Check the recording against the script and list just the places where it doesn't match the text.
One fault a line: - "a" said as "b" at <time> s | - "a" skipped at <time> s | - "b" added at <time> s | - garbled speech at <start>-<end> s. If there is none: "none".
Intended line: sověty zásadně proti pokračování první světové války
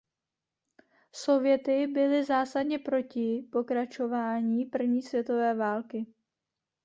- "byly" added at 1.9 s